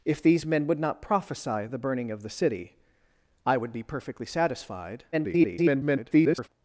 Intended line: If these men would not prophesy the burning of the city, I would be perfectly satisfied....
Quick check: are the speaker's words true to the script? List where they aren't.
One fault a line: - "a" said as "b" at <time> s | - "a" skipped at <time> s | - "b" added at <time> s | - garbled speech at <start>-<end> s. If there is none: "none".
- garbled speech at 5.1-6.5 s